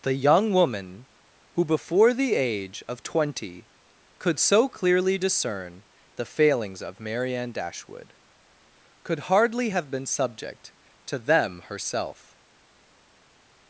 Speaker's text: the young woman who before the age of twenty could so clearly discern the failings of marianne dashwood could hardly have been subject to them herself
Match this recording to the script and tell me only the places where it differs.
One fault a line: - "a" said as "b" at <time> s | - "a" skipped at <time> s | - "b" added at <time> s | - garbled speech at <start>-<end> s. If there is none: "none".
none